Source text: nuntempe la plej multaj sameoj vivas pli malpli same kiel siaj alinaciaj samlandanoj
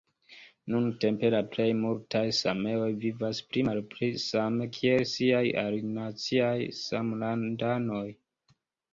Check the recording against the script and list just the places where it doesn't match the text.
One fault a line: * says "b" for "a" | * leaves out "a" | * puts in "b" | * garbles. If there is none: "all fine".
all fine